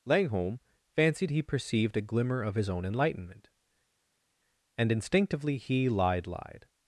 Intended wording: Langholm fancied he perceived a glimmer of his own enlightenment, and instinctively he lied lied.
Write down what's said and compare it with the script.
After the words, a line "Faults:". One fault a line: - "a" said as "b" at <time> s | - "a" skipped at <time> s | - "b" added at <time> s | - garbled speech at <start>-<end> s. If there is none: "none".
Langholm fancied he perceived a glimmer of his own enlightenment, and instinctively he lied lied.
Faults:
none